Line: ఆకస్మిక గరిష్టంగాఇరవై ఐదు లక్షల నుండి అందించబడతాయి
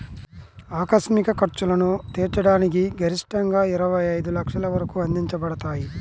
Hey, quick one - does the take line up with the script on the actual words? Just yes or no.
no